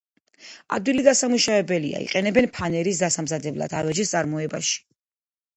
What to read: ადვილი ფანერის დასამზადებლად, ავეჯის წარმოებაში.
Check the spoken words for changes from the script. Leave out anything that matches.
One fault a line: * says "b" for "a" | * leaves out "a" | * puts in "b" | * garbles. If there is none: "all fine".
* puts in "დასამუშავებელია იყენებენ"